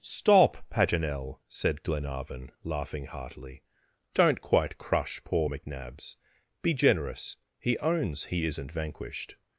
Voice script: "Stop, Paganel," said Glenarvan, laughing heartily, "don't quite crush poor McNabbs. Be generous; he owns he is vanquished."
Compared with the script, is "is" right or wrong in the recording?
wrong